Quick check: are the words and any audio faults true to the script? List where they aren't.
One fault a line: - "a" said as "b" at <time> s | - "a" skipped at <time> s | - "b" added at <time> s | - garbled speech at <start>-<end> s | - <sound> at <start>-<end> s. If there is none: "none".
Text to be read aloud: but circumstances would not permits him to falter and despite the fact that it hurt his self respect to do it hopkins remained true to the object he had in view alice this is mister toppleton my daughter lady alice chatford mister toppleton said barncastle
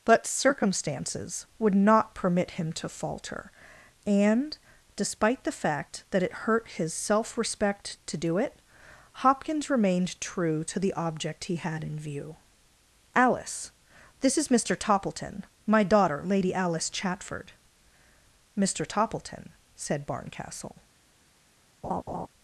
- "permits" said as "permit" at 2.1 s
- laugh at 21.8-22.3 s